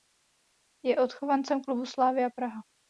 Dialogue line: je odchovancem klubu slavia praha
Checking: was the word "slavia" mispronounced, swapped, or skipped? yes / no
no